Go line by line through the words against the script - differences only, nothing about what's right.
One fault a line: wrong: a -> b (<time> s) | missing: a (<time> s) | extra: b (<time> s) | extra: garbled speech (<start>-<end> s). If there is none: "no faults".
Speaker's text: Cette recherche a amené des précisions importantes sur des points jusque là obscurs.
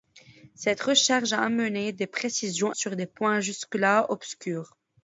missing: importantes (2.7 s)